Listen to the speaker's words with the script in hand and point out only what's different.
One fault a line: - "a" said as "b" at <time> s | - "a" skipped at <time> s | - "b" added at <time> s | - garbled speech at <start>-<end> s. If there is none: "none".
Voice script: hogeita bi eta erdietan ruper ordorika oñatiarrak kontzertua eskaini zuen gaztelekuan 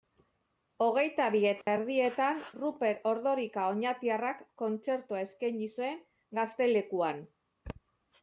none